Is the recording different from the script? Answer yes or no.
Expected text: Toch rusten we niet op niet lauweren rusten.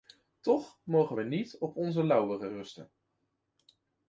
yes